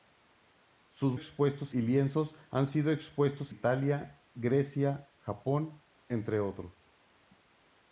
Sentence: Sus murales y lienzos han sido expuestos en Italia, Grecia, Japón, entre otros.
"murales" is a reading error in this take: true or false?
true